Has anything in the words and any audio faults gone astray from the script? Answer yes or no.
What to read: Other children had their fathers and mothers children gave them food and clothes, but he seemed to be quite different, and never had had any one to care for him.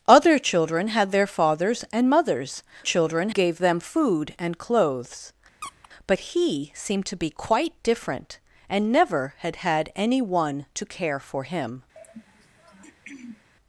yes